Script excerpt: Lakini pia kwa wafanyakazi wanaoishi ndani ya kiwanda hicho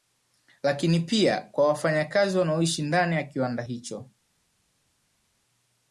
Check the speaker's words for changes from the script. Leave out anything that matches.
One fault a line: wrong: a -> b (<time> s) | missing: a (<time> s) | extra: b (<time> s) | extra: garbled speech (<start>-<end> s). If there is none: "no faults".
no faults